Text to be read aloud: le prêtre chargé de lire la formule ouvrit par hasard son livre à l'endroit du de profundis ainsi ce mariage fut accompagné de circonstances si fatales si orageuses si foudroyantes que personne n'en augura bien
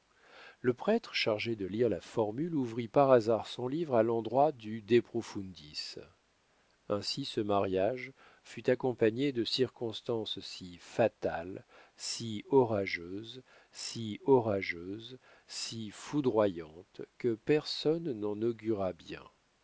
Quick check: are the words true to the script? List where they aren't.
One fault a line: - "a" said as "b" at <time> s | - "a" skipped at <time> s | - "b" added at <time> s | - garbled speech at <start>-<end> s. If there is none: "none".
- "orageuses si" added at 14.2 s